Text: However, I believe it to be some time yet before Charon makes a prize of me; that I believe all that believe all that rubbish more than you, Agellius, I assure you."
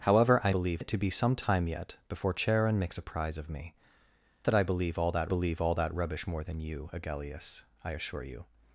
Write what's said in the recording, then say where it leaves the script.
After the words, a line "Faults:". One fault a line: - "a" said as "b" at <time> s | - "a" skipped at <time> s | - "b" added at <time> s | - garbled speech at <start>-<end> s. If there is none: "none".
However, I believe it to be some time yet before Charon makes a prize of me; that I believe all that believe all that rubbish more than you, Agellius, I assure you."
Faults:
none